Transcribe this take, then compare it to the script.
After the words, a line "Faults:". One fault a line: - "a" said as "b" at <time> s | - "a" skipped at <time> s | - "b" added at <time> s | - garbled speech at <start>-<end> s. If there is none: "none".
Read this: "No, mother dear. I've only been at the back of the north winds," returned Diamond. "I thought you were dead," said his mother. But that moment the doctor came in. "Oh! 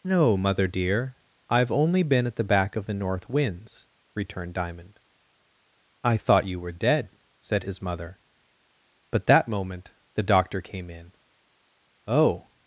"No, mother dear. I've only been at the back of the north winds," returned Diamond. "I thought you were dead," said his mother. But that moment the doctor came in. "Oh!
Faults:
none